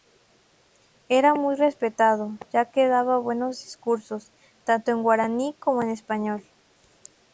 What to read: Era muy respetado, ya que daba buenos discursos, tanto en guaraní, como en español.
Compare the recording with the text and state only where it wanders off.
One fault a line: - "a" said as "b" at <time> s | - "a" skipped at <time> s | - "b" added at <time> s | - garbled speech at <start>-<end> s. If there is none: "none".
none